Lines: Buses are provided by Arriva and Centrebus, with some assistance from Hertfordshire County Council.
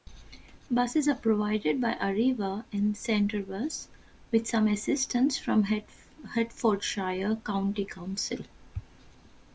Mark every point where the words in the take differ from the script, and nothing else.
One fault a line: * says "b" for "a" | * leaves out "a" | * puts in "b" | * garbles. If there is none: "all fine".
all fine